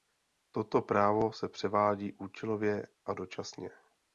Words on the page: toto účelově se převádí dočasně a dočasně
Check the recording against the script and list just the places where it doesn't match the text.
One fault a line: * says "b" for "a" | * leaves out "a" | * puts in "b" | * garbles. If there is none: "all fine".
* says "právo" for "účelově"
* says "účelově" for "dočasně"